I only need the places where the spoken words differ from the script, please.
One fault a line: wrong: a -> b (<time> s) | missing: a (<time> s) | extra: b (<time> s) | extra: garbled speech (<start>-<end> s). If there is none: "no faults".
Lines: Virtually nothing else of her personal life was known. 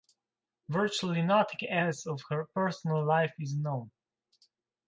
wrong: was -> is (3.4 s)